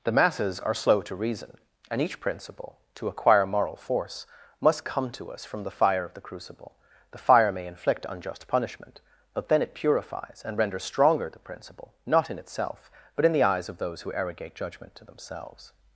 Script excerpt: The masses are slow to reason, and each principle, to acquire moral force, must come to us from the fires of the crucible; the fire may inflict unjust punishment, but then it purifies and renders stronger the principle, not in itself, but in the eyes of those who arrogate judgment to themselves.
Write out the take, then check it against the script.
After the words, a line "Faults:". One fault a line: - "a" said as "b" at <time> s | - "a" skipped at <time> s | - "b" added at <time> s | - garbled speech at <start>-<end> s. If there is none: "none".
The masses are slow to reason, and each principle, to acquire moral force, must come to us from the fire of the crucible; the fire may inflict unjust punishment, but then it purifies and renders stronger the principle, not in itself, but in the eyes of those who arrogate judgment to themselves.
Faults:
- "fires" said as "fire" at 5.8 s